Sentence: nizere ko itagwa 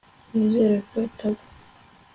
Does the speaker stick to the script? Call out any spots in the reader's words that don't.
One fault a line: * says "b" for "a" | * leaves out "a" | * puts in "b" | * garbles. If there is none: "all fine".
all fine